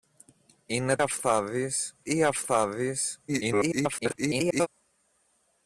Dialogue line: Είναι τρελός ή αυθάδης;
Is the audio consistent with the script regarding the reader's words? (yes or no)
no